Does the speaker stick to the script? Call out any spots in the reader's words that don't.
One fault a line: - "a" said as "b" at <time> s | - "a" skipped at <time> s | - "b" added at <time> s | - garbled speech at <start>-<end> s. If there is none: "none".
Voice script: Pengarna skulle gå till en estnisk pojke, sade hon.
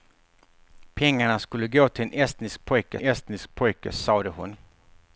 - "estnisk pojke" added at 3.0 s